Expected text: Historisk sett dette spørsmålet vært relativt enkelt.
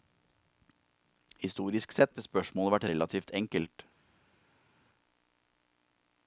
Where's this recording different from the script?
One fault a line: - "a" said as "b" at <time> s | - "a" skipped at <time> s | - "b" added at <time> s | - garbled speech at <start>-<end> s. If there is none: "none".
none